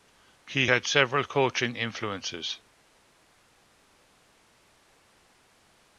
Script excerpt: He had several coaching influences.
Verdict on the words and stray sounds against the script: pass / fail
pass